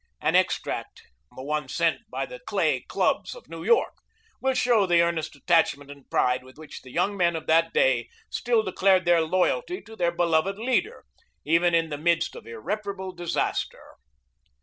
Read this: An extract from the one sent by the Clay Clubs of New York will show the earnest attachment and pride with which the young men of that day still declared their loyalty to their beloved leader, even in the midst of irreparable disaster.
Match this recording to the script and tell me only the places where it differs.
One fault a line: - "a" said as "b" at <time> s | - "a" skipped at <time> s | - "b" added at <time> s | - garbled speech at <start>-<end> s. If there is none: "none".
- "from" skipped at 1.0 s